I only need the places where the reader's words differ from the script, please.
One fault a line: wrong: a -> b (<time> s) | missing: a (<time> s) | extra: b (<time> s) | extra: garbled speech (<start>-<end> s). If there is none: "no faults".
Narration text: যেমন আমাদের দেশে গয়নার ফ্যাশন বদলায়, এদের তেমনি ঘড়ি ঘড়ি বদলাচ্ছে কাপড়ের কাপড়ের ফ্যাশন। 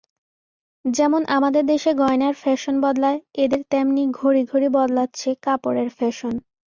missing: কাপড়ের (5.9 s)